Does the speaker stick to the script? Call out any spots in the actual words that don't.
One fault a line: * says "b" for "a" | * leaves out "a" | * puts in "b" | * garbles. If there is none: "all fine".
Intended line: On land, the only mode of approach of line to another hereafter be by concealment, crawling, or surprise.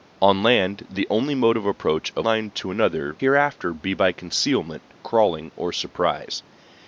all fine